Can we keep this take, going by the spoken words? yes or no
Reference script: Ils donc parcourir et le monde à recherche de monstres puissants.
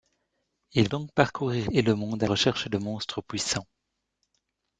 yes